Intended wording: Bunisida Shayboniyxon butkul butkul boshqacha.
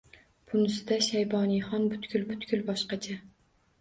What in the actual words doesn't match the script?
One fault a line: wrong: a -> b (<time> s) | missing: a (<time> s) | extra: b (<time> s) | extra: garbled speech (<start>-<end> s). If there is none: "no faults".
no faults